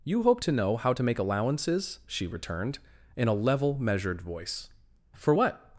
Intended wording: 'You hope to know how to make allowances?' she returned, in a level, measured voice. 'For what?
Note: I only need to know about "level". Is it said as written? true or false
true